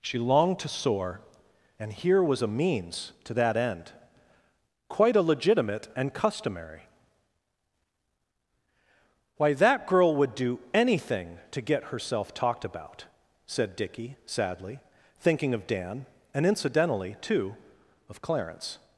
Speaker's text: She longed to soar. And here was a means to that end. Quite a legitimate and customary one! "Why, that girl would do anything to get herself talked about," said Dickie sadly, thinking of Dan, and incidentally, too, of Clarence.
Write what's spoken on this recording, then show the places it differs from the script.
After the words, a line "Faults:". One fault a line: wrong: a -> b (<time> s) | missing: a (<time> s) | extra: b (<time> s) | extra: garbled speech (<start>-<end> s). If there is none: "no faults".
She longed to soar. And here was a means to that end. Quite a legitimate and customary! "Why, that girl would do anything to get herself talked about," said Dickie sadly, thinking of Dan, and incidentally, too, of Clarence.
Faults:
missing: one (6.8 s)